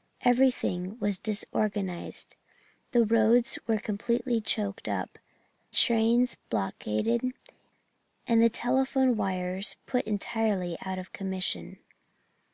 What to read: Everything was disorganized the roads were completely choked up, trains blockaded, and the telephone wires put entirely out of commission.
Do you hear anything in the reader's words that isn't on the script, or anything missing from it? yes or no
no